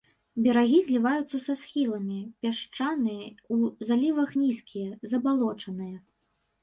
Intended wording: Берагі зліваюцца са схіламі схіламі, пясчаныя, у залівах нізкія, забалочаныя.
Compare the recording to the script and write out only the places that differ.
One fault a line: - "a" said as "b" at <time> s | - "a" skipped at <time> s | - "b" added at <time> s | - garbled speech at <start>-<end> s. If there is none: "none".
- "схіламі" skipped at 2.2 s